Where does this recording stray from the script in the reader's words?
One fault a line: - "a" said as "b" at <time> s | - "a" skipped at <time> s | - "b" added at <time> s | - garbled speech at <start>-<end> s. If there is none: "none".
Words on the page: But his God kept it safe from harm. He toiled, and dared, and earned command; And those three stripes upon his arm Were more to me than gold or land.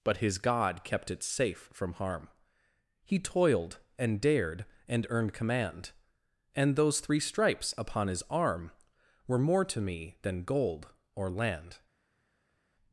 none